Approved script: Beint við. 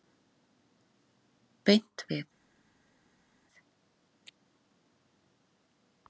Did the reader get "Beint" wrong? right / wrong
right